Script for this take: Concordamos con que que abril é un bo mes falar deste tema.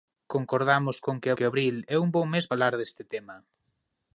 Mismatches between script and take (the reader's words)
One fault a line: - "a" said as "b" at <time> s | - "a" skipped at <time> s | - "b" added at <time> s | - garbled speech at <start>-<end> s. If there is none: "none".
none